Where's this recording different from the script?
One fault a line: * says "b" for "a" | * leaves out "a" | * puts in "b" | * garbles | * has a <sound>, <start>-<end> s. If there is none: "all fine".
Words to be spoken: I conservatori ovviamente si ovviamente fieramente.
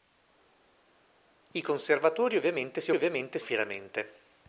all fine